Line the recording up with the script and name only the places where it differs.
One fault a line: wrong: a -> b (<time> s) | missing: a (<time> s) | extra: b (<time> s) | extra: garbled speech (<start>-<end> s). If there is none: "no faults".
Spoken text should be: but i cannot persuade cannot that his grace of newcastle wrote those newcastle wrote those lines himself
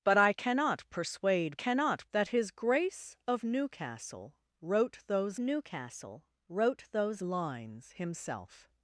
no faults